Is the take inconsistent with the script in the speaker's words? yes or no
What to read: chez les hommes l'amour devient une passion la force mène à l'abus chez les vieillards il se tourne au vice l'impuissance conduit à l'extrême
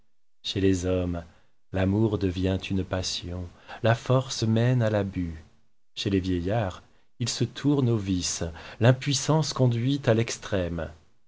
no